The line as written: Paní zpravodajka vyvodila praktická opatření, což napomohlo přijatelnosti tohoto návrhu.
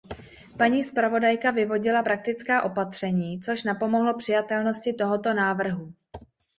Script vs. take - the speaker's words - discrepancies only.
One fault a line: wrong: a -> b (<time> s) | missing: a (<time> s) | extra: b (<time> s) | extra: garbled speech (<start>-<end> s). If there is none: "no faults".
no faults